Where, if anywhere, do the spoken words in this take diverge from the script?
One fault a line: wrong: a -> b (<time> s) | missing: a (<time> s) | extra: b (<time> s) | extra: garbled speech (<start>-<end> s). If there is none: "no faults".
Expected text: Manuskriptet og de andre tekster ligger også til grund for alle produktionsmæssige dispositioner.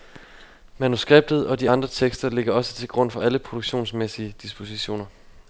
no faults